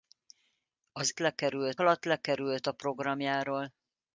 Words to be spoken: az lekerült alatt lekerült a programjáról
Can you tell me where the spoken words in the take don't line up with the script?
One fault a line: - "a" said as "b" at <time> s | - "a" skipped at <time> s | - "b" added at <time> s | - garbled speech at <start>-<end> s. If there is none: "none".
none